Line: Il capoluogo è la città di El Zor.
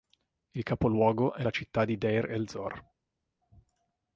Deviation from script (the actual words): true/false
true